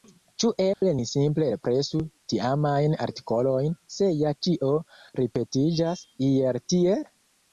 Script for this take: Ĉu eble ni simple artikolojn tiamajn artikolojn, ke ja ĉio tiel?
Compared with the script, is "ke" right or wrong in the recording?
wrong